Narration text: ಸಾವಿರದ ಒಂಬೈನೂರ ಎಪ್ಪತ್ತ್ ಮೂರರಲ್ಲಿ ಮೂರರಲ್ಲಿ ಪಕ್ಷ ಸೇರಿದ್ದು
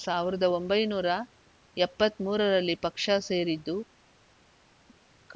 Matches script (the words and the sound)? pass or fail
fail